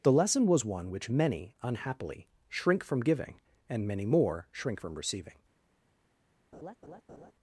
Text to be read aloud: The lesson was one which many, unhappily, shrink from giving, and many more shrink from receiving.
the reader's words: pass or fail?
pass